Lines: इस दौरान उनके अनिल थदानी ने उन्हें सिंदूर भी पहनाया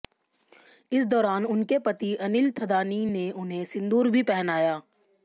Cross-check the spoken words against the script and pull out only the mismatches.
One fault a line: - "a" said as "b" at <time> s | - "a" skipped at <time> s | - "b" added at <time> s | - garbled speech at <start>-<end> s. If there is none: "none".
- "पति" added at 1.8 s